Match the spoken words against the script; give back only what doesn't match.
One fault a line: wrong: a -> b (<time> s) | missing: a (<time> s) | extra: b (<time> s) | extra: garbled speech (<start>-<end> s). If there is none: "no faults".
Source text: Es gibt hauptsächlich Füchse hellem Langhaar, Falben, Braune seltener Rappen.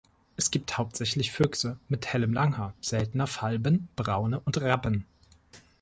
extra: mit (1.9 s)
extra: seltener (2.8 s)
wrong: seltener -> und (4.4 s)